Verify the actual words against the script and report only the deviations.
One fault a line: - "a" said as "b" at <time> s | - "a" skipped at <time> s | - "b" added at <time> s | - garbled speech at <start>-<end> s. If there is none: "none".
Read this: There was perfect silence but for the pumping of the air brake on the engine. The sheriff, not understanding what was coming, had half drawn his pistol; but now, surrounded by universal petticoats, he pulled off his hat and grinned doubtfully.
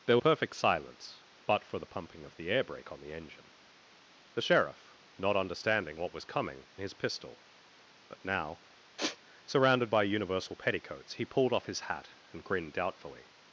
- "was" skipped at 0.2 s
- "had half drawn" skipped at 6.6 s